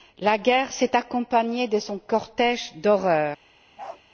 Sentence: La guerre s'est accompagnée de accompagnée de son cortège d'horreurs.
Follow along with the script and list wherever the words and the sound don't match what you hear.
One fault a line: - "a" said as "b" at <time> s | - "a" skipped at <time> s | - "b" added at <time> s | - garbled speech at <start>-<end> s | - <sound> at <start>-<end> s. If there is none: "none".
- "accompagnée de" skipped at 1.8 s
- bark at 3.8-4.0 s